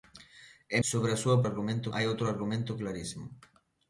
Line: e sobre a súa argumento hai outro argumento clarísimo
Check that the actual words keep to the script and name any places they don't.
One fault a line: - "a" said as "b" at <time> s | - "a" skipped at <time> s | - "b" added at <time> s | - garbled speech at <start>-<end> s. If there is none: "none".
none